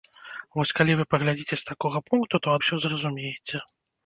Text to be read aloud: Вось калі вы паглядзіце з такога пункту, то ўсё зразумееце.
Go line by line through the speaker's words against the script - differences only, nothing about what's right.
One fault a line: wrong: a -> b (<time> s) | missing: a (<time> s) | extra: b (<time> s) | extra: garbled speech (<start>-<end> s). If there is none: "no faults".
no faults